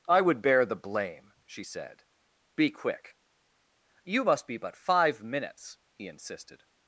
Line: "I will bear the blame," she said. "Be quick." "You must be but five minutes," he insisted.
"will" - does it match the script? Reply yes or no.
no